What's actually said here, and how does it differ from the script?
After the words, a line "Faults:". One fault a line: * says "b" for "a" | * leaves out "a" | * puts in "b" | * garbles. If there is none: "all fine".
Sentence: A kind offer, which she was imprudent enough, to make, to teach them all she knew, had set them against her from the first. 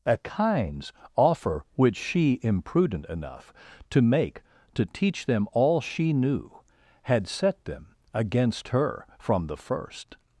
A kinds offer, which she imprudent enough, to make, to teach them all she knew, had set them against her from the first.
Faults:
* says "kinds" for "kind"
* leaves out "was"